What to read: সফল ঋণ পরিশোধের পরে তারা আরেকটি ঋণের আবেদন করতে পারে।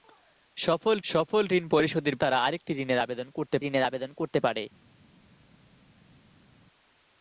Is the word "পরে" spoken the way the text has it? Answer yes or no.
no